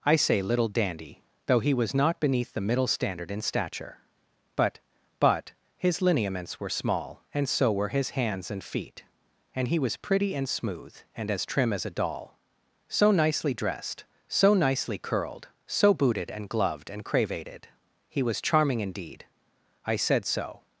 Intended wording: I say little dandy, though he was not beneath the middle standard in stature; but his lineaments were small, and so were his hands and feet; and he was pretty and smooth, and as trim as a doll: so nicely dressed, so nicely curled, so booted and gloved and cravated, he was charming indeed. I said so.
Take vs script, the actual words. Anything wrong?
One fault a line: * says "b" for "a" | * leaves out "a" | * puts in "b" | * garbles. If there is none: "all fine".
* puts in "but"